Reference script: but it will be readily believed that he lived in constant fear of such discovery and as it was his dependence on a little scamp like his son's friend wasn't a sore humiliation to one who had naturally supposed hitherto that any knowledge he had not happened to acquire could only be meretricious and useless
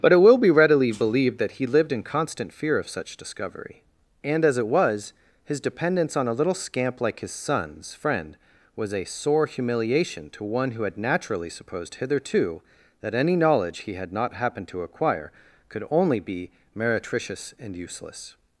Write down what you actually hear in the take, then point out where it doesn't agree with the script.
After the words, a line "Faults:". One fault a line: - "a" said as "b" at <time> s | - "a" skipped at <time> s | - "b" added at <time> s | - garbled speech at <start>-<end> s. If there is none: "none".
but it will be readily believed that he lived in constant fear of such discovery and as it was his dependence on a little scamp like his son's friend was a sore humiliation to one who had naturally supposed hitherto that any knowledge he had not happened to acquire could only be meretricious and useless
Faults:
- "wasn't" said as "was" at 8.8 s